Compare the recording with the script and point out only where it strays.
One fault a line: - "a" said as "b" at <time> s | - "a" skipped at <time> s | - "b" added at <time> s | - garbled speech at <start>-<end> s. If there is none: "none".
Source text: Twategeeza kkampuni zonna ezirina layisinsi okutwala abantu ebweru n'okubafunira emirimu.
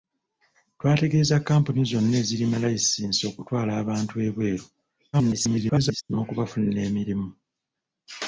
- garbled speech at 5.1-6.0 s